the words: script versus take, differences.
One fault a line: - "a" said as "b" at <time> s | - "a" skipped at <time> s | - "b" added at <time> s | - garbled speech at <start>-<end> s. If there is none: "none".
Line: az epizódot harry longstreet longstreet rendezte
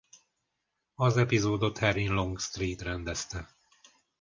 - "longstreet" skipped at 2.8 s